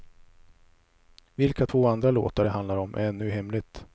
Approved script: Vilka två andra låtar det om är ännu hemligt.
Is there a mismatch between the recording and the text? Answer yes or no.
yes